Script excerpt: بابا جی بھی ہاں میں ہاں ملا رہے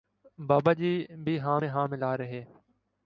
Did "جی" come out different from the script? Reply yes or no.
no